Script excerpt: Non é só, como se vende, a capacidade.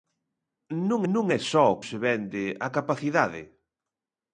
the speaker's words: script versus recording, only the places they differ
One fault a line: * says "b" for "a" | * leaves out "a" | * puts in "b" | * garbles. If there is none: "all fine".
* puts in "non"
* leaves out "como"